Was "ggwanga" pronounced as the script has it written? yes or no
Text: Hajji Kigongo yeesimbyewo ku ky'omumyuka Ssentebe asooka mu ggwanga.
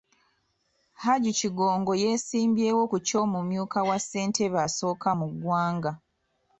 yes